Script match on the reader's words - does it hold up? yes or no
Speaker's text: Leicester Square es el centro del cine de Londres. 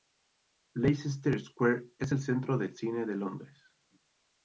yes